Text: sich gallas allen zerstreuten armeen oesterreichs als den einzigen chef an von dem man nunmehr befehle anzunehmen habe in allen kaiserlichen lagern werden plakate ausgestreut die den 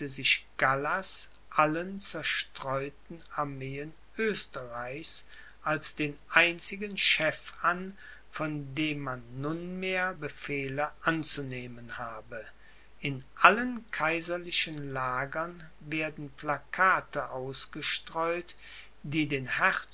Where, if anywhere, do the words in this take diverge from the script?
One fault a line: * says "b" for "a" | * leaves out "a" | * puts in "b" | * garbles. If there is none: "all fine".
all fine